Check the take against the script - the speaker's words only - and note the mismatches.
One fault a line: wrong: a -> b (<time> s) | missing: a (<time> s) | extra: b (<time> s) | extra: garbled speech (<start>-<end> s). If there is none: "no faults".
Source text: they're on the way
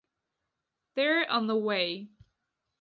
no faults